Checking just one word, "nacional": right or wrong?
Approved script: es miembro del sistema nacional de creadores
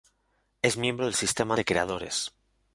wrong